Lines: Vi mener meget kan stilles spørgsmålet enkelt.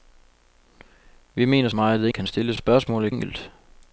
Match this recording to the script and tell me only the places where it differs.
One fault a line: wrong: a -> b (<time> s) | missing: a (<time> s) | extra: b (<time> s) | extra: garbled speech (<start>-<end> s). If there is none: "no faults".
no faults